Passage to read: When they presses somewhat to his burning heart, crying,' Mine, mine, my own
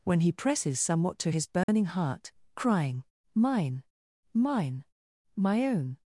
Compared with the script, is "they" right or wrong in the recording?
wrong